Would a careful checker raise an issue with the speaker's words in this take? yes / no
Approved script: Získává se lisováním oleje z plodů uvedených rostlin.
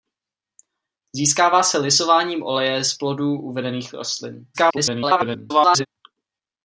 yes